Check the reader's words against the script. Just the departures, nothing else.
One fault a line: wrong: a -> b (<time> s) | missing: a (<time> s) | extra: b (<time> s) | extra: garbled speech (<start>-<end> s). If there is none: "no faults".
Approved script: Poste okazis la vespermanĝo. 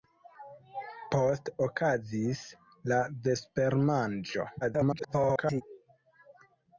extra: garbled speech (4.6-5.6 s)